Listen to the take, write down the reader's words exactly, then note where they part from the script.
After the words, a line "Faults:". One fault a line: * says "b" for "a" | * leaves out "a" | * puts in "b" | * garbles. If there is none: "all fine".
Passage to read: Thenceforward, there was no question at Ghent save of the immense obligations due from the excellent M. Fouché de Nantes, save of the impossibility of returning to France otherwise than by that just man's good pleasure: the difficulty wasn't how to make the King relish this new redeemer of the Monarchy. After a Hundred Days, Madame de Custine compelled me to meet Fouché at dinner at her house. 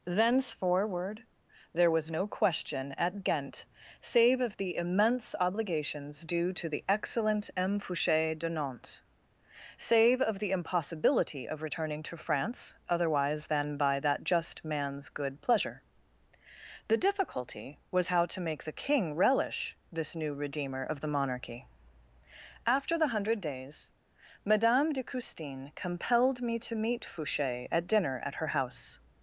Thenceforward, there was no question at Ghent save of the immense obligations due to the excellent M. Fouché de Nantes, save of the impossibility of returning to France otherwise than by that just man's good pleasure: the difficulty was how to make the King relish this new redeemer of the Monarchy. After the Hundred Days, Madame de Custine compelled me to meet Fouché at dinner at her house.
Faults:
* says "to" for "from"
* says "was" for "wasn't"
* says "the" for "a"